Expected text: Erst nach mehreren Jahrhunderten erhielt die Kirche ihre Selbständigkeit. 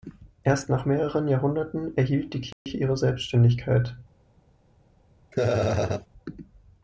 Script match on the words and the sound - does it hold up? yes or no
no